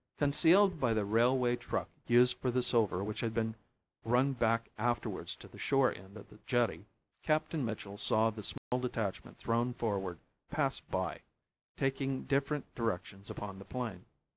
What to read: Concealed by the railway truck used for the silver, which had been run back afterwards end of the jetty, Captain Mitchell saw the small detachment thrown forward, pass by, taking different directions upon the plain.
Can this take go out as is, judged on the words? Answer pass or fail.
fail